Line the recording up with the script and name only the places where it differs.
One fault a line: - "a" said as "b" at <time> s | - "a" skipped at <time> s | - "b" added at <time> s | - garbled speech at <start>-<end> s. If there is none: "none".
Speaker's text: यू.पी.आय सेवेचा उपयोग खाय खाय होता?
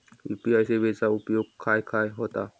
none